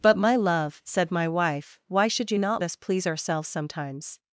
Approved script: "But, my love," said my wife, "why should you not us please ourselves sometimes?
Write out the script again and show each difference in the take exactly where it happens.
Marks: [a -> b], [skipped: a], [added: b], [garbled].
"But, my love," said my wife, "why should you not us please ourselves sometimes?